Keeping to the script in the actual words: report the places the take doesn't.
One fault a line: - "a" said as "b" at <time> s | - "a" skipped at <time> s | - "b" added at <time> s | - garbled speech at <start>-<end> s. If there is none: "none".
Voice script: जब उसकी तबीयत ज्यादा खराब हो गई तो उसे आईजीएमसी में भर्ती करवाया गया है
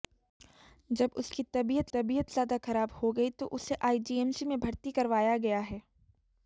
- "तबीयत" added at 1.9 s